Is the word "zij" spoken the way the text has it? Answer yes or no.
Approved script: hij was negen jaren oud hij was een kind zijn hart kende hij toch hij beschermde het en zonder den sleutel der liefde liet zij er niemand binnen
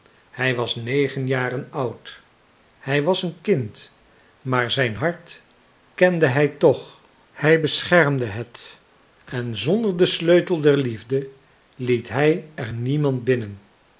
no